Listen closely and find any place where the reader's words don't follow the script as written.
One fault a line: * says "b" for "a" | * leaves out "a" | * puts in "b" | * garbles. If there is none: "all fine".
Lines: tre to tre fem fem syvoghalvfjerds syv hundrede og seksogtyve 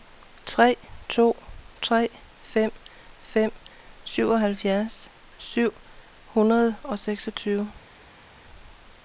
all fine